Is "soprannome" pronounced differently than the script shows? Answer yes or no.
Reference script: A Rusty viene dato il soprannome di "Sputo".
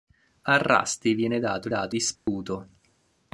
yes